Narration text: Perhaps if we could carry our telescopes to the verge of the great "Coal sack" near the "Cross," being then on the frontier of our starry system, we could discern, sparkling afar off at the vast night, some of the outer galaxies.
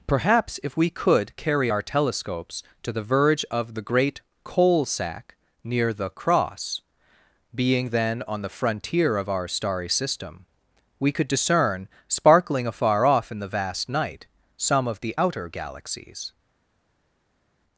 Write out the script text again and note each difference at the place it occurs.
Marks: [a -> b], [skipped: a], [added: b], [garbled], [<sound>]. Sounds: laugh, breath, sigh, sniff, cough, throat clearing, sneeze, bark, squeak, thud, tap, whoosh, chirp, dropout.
Perhaps if we could carry our telescopes to the verge of the great "Coal sack" near the "Cross," being then on the frontier of our starry system, we could discern, sparkling afar off [at -> in] the vast night, some of the outer galaxies.